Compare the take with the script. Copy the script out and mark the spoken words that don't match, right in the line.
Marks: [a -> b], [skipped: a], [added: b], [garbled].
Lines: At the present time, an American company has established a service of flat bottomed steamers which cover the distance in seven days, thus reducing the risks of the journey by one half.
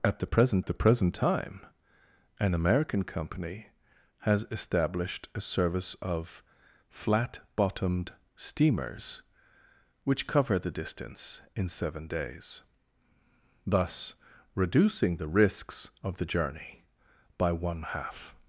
At the present [added: the present] time, an American company has established a service of flat bottomed steamers which cover the distance in seven days, thus reducing the risks of the journey by one half.